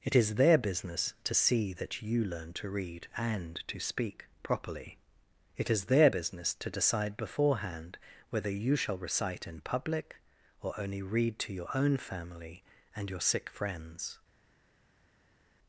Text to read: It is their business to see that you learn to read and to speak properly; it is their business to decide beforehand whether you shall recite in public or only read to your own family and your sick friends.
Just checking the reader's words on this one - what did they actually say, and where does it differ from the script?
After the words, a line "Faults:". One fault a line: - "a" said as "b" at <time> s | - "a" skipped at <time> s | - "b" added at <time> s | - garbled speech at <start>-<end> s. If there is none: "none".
It is their business to see that you learn to read and to speak properly; it is their business to decide beforehand whether you shall recite in public or only read to your own family and your sick friends.
Faults:
none